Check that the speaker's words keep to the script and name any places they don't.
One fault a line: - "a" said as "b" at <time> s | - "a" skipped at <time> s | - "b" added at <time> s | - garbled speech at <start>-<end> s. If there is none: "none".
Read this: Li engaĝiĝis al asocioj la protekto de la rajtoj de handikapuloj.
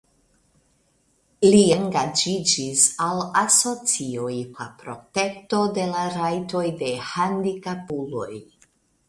none